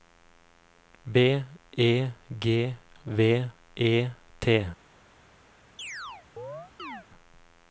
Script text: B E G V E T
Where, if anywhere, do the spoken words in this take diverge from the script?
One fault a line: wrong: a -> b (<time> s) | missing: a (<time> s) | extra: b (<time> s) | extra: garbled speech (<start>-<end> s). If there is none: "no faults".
no faults